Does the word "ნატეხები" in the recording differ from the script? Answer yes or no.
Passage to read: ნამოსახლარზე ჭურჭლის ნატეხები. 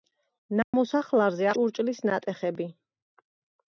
no